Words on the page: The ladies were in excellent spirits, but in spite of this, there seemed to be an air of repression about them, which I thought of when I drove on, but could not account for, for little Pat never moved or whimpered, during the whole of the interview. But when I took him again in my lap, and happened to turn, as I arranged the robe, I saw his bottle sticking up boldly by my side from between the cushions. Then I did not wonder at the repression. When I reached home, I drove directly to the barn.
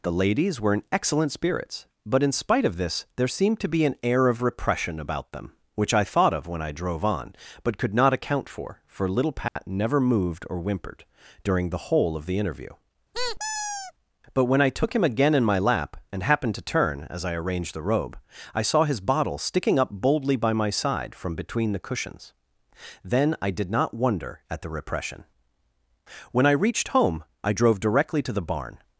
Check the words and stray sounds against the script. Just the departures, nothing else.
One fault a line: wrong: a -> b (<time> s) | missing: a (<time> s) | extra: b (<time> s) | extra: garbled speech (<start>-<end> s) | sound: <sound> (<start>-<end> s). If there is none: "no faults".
sound: dropout (9.5-9.6 s)
sound: squeak (13.1-13.9 s)